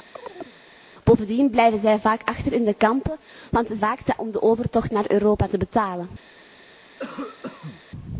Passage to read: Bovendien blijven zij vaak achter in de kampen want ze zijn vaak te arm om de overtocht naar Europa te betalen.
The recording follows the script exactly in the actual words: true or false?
false